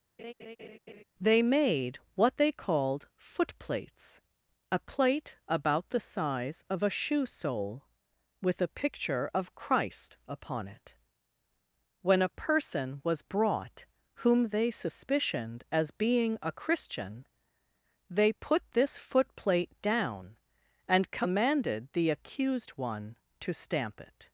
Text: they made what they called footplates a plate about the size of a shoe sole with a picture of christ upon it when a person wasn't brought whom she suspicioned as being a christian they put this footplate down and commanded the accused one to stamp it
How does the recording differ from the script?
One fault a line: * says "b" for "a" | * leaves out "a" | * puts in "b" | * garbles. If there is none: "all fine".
* says "was" for "wasn't"
* says "they" for "she"